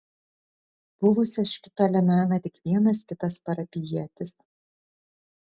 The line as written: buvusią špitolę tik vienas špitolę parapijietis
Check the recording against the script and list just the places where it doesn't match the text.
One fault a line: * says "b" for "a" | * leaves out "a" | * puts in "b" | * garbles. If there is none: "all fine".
* puts in "mena"
* says "kitas" for "špitolę"